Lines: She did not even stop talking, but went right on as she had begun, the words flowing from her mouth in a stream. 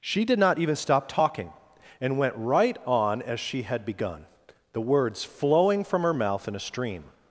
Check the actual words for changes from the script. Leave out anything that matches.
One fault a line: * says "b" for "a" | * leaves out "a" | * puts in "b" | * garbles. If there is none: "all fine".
* says "and" for "but"